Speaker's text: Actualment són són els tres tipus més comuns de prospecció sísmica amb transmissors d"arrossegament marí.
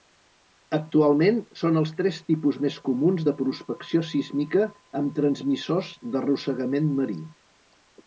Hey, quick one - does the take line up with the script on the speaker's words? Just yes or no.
no